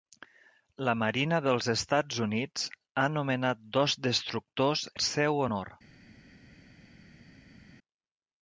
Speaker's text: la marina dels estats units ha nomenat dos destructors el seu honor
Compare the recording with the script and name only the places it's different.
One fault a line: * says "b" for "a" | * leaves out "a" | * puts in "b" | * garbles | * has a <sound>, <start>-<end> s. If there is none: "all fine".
all fine